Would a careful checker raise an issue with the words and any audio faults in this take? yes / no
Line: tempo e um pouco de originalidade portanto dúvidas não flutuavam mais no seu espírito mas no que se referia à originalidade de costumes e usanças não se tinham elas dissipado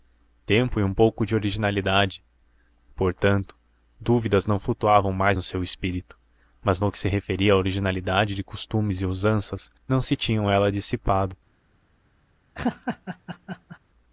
yes